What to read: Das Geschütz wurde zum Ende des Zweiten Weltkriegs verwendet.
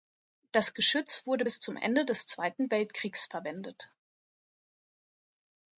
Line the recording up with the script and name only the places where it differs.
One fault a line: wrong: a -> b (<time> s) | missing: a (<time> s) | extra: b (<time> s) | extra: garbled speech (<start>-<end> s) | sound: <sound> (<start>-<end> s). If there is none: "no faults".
extra: bis (1.4 s)